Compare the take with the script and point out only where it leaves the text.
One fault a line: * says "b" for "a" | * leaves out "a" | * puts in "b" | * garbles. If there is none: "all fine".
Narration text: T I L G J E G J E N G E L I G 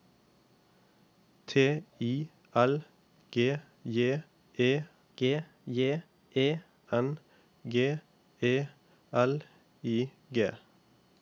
all fine